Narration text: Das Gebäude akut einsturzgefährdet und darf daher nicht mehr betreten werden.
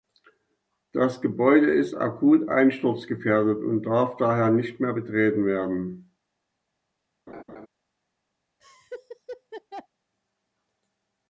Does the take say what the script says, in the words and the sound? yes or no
no